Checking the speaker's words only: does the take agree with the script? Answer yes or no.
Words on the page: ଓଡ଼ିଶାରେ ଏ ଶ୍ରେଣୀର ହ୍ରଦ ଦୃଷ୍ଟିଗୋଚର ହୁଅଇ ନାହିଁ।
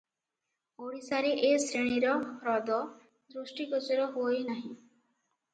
yes